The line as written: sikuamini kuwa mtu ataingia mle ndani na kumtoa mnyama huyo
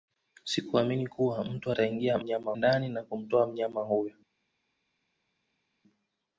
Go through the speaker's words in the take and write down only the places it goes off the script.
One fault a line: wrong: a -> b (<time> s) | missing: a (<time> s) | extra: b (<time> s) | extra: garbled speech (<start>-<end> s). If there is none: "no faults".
wrong: mle -> mnyama (2.2 s)